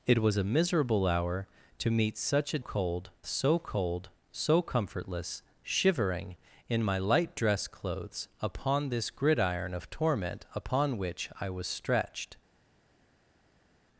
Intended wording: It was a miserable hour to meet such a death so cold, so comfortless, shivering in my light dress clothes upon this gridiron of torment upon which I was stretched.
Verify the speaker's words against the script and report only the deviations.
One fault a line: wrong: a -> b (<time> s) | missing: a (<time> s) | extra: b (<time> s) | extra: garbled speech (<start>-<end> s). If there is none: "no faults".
wrong: death -> cold (2.6 s)